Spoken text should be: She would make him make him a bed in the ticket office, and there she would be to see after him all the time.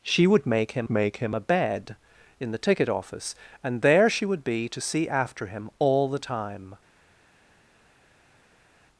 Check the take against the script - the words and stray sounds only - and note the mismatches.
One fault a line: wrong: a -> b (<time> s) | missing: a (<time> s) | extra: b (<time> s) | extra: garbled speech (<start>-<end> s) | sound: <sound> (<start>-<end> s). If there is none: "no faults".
no faults